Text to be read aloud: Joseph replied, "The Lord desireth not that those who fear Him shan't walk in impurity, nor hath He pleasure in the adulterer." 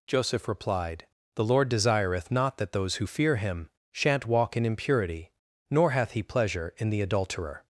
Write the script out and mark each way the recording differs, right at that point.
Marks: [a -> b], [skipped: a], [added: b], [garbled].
Joseph replied, "The Lord desireth not that those who fear Him shan't walk in impurity, nor hath He pleasure in the adulterer."